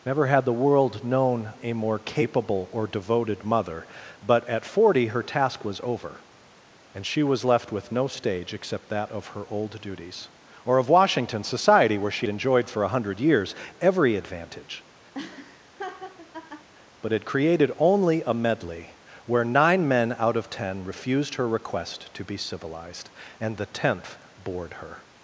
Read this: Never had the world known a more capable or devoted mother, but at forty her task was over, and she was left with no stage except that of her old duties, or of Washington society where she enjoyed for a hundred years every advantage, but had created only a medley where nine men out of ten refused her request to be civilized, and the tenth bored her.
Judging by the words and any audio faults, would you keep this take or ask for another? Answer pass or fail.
fail